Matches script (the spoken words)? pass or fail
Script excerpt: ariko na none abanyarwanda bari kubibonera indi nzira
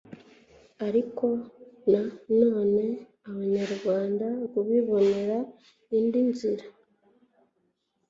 fail